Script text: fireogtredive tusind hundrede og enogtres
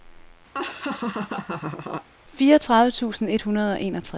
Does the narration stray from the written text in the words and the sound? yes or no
yes